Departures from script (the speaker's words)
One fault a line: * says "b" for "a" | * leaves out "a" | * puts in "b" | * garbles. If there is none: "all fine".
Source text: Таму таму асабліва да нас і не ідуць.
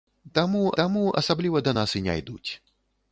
all fine